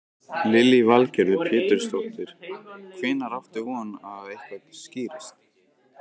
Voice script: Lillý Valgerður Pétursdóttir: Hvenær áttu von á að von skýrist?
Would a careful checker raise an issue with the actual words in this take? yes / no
yes